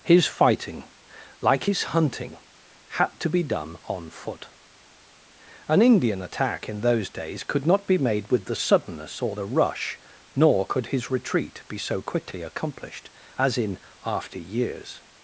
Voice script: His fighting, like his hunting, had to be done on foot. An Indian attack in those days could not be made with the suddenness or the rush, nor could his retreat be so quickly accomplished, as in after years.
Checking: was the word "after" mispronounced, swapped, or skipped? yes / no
no